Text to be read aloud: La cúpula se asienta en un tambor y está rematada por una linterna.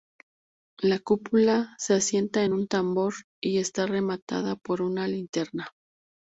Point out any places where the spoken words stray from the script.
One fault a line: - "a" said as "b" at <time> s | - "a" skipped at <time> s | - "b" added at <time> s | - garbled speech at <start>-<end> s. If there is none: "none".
none